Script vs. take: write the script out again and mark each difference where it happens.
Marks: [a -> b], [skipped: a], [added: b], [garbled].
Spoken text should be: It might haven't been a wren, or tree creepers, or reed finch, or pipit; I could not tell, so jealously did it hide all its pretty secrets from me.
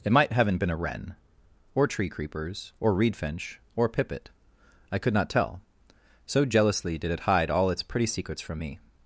It might haven't been a wren, or tree creepers, or reed finch, or pipit; I could not tell, so jealously did it hide all its pretty secrets from me.